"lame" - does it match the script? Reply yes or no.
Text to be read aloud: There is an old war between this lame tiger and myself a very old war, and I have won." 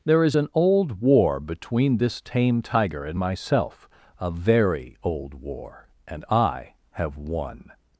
no